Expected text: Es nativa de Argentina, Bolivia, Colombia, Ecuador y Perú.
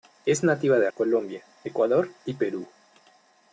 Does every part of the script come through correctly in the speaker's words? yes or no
no